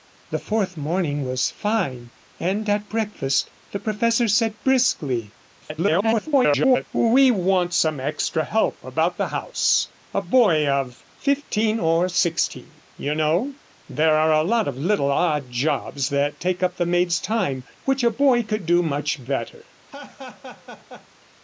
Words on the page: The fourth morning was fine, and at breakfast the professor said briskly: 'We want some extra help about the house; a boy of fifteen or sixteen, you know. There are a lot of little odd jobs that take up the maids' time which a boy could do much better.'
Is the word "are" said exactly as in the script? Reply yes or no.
yes